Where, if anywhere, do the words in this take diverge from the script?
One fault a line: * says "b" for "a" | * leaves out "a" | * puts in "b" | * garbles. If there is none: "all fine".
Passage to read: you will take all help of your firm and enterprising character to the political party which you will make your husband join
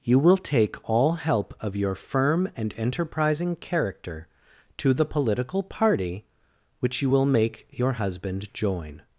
all fine